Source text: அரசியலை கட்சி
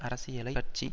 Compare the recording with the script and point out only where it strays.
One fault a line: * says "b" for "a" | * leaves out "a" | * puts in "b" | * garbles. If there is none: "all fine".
all fine